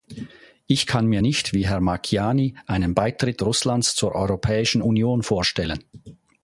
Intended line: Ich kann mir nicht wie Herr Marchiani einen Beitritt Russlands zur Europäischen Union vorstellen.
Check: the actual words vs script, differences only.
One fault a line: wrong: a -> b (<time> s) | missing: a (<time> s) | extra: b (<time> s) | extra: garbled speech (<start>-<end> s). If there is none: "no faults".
no faults